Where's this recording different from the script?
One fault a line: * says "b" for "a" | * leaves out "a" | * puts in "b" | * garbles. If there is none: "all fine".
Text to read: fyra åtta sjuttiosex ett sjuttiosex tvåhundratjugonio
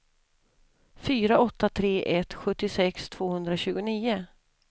* says "tre" for "sjuttiosex"